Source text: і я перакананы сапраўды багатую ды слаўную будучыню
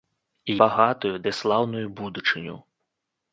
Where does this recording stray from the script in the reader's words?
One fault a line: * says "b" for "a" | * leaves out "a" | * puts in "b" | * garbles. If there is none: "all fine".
* leaves out "я перакананы сапраўды"